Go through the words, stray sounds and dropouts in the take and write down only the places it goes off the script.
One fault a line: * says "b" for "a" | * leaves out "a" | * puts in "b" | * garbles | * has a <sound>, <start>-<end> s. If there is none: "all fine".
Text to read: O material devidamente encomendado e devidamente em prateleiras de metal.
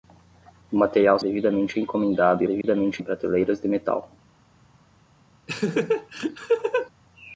* has a dropout, 2.6-2.6 s
* has a laugh, 5.5-6.9 s